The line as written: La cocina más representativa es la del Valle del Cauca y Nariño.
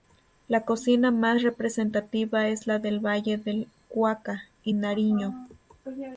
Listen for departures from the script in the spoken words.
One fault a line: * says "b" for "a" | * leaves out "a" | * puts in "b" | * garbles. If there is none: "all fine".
all fine